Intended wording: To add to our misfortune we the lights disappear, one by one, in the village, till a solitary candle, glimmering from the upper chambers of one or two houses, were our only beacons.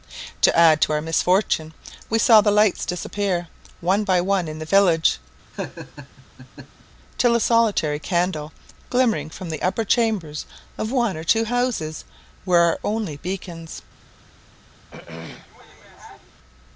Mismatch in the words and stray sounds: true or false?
true